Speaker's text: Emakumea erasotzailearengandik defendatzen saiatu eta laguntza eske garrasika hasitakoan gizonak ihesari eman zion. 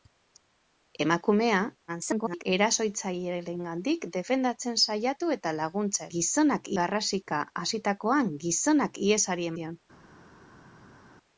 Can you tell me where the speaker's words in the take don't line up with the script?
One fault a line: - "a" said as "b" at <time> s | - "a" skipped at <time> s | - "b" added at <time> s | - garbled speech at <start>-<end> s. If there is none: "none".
- garbled speech at 1.9-2.4 s
- "eske" said as "gizonak" at 6.2 s
- "eman" skipped at 9.5 s